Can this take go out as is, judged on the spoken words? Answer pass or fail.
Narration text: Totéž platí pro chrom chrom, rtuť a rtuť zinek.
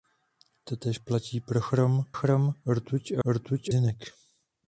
pass